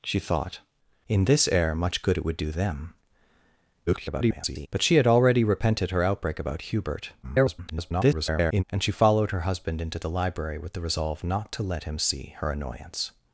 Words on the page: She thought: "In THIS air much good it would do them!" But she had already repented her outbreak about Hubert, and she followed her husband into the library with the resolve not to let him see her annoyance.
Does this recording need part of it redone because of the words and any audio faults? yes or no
yes